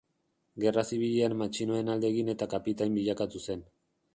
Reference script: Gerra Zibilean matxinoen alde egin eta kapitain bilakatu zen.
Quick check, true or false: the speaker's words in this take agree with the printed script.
true